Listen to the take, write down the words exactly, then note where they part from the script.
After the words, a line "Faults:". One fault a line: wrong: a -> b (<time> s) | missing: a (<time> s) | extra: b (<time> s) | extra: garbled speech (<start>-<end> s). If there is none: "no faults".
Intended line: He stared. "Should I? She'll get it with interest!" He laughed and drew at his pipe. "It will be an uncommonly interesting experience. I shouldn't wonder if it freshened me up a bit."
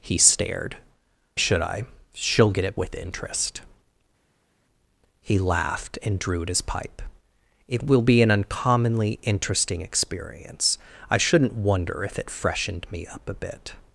He stared. "Should I? She'll get it with interest!" He laughed and drew at his pipe. "It will be an uncommonly interesting experience. I shouldn't wonder if it freshened me up a bit."
Faults:
no faults